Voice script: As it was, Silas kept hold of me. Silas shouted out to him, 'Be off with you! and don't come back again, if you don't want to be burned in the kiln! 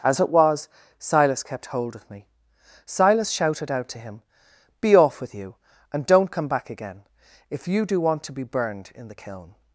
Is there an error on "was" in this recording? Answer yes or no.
no